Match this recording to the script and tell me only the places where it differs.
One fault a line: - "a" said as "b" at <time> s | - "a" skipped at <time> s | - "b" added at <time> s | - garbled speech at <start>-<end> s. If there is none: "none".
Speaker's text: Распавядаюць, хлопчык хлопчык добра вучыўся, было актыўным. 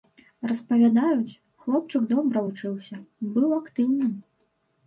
- "хлопчык" skipped at 2.1 s
- "было" said as "быў" at 3.4 s